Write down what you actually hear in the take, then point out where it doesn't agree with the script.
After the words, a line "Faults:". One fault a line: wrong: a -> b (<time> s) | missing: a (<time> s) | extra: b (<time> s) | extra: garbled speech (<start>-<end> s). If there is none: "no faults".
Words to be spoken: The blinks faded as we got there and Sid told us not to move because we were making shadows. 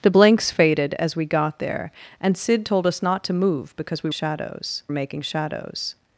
The blinks faded as we got there and Sid told us not to move because we shadows making shadows.
Faults:
wrong: were -> shadows (4.1 s)